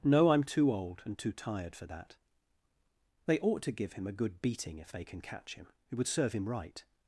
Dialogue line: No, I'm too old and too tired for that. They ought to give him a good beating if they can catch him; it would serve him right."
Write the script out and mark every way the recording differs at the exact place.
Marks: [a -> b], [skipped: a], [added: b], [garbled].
No, I'm too old and too tired for that. They ought to give him a good beating if they can catch him; it would serve him right."